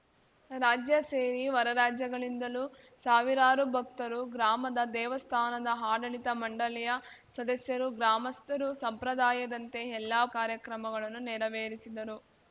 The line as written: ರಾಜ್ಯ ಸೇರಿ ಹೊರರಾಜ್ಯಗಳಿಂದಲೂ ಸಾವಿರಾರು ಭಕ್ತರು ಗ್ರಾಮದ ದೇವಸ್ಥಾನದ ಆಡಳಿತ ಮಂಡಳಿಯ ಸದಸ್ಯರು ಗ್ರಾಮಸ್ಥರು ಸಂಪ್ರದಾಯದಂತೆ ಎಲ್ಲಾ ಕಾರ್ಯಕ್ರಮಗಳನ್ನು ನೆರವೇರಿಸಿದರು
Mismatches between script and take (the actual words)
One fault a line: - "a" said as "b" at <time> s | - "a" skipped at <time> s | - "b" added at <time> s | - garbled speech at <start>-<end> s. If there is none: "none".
none